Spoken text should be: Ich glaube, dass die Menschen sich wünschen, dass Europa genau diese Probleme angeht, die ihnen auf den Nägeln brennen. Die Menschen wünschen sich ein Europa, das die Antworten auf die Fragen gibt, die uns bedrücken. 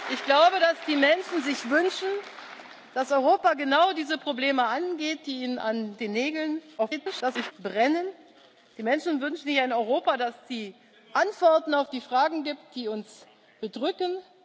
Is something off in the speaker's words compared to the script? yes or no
yes